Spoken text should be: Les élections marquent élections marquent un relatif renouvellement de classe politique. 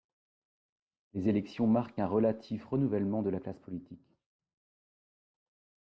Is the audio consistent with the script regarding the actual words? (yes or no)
no